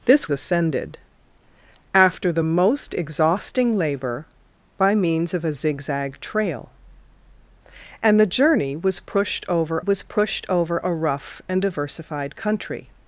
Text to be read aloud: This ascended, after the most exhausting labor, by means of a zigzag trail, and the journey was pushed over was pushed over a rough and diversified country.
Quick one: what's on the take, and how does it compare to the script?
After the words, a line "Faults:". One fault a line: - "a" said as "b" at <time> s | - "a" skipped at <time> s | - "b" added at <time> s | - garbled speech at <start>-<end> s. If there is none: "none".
This ascended, after the most exhausting labor, by means of a zigzag trail, and the journey was pushed over was pushed over a rough and diversified country.
Faults:
none